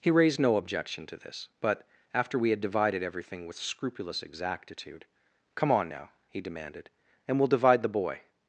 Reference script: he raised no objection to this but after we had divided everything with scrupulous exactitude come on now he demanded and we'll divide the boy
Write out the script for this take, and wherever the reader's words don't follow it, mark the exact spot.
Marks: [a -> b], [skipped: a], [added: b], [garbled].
he raised no objection to this but after we had divided everything with scrupulous exactitude come on now he demanded and we'll divide the boy